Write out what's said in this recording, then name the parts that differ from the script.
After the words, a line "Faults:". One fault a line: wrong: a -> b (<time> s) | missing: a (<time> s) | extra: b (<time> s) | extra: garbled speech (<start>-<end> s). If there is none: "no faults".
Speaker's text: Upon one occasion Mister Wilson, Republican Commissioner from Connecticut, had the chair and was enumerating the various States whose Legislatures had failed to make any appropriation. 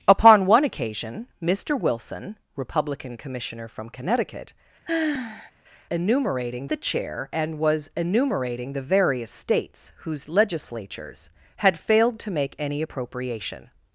Upon one occasion Mister Wilson, Republican Commissioner from Connecticut, enumerating the chair and was enumerating the various States whose Legislatures had failed to make any appropriation.
Faults:
wrong: had -> enumerating (5.9 s)